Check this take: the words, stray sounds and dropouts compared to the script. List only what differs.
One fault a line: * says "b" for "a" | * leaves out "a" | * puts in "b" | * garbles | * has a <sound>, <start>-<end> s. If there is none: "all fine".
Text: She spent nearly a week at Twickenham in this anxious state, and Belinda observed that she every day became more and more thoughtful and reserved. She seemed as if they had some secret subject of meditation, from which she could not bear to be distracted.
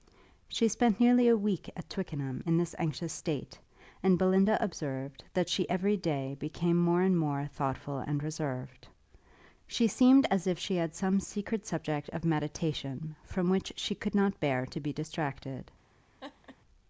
* says "she" for "they"
* has a laugh, 16.2-16.6 s